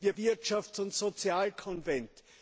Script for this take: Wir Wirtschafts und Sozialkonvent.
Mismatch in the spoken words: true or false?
false